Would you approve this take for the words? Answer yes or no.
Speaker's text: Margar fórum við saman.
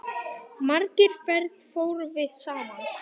no